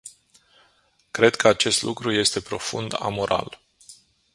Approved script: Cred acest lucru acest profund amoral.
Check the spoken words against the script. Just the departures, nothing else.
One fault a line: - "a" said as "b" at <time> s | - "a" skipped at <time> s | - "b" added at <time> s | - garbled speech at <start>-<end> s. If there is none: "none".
- "că" added at 1.4 s
- "acest" said as "este" at 2.1 s